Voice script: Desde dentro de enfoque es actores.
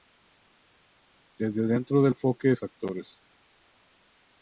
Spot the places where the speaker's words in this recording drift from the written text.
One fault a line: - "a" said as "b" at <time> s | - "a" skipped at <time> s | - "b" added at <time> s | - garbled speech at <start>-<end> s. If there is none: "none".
none